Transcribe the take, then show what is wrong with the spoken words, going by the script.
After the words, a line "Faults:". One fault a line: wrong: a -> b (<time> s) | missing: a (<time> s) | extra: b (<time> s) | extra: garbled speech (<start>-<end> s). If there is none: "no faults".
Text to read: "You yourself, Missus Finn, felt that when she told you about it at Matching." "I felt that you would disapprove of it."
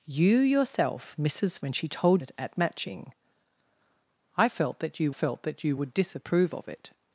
"You yourself, Missus When she told it at Matching." "I felt that you felt that you would disapprove of it."
Faults:
missing: Finn felt that (1.6 s)
missing: you about (2.2 s)
extra: felt that you (5.1 s)